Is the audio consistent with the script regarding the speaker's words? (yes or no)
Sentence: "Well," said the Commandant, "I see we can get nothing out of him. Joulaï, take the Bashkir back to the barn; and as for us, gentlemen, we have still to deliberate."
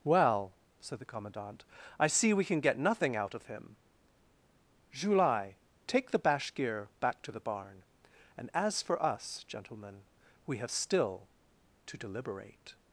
yes